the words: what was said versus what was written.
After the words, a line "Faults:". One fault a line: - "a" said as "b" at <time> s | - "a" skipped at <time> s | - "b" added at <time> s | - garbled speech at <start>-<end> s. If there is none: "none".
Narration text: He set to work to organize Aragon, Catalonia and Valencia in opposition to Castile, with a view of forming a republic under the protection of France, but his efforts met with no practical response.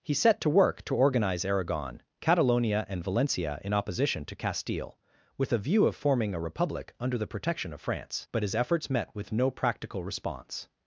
He set to work to organize Aragon, Catalonia and Valencia in opposition to Castile, with a view of forming a republic under the protection of France, but his efforts met with no practical response.
Faults:
none